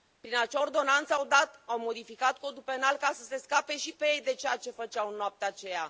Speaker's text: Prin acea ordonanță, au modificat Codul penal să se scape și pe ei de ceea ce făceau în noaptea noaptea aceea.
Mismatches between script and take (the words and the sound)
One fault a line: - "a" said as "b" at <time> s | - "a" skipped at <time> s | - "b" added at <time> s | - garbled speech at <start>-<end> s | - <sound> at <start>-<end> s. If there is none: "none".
- "ca" added at 3.0 s
- "noaptea" skipped at 5.5 s